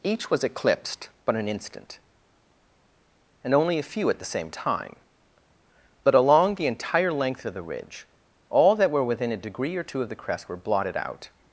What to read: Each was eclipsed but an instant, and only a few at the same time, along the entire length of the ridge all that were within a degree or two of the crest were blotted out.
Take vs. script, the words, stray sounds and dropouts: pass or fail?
fail